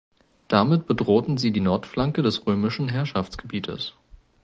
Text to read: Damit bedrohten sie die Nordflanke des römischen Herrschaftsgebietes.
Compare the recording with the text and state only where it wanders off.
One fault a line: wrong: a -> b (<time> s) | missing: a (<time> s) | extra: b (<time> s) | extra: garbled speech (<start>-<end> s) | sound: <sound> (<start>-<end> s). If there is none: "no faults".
no faults